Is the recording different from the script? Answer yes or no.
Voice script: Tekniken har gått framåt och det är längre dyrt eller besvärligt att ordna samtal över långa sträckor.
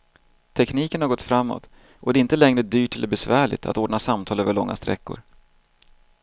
yes